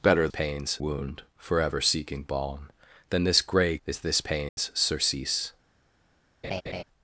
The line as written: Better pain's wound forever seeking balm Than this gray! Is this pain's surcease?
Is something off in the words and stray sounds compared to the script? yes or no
yes